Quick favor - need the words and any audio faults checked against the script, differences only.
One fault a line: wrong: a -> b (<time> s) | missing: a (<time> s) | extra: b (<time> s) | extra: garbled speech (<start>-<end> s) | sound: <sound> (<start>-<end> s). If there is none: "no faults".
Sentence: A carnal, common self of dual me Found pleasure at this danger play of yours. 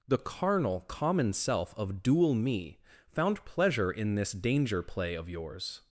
wrong: A -> The (0.1 s)
wrong: at -> in (3.9 s)